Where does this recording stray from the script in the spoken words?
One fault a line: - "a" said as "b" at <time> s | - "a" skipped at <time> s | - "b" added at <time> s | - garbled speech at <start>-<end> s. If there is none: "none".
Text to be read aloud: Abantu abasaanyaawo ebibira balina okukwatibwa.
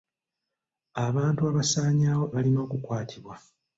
- "ebibira" skipped at 2.2 s